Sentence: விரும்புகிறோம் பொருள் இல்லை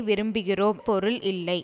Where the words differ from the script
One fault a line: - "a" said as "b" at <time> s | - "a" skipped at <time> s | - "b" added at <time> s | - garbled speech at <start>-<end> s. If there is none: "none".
none